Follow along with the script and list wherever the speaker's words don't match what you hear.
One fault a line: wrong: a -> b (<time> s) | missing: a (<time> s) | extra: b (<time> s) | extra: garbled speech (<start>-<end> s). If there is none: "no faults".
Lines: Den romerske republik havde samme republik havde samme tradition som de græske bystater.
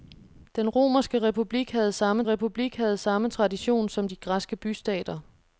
no faults